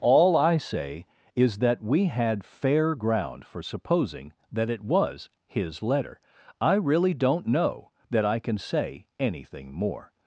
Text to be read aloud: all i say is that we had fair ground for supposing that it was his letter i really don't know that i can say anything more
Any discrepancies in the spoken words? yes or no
no